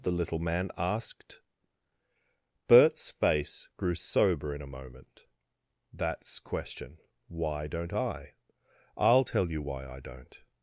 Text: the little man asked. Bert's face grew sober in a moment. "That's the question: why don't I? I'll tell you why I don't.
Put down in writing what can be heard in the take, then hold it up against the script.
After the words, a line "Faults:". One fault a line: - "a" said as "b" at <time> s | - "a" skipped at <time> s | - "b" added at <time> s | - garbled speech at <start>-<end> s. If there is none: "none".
the little man asked. Bert's face grew sober in a moment. "That's question: why don't I? I'll tell you why I don't.
Faults:
- "the" skipped at 6.4 s